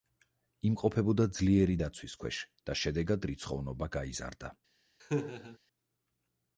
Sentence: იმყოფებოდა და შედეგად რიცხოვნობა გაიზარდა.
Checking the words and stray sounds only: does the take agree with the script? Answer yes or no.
no